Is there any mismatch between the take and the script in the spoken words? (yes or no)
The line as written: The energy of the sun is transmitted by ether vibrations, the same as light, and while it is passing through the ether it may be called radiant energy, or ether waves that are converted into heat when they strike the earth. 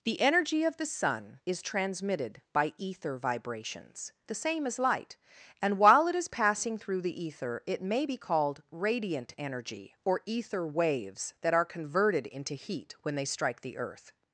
no